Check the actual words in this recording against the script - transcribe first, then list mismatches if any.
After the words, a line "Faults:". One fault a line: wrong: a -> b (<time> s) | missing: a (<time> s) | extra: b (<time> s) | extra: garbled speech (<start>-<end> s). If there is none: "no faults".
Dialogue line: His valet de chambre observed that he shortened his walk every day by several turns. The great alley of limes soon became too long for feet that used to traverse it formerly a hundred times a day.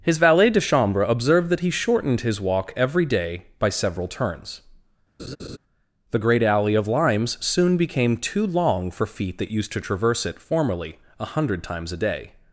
His valet de chambre observed that he shortened his walk every day by several turns. The great alley of limes soon became too long for feet that used to traverse it formerly a hundred times a day.
Faults:
no faults